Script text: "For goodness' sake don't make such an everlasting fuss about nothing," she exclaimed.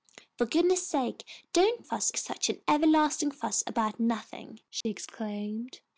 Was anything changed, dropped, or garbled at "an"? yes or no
no